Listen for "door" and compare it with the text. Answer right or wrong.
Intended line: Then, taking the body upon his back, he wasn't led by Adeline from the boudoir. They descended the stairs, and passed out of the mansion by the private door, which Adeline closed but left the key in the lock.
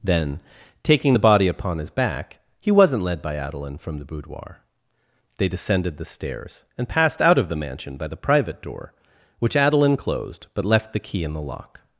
right